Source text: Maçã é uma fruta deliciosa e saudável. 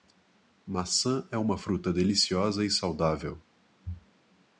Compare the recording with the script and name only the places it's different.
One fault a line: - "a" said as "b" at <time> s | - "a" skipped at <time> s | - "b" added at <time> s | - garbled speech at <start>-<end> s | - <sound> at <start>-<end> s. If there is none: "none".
none